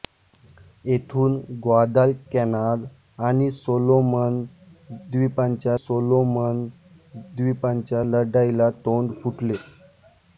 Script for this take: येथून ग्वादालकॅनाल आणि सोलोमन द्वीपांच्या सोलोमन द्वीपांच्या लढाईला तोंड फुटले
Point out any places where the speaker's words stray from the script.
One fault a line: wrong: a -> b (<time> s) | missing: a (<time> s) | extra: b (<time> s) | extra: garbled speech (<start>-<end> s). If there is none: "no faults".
no faults